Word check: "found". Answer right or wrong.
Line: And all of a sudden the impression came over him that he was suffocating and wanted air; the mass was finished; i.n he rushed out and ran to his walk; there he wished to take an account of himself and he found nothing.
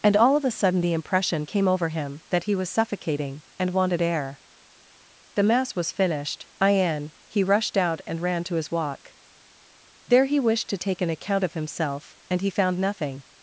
right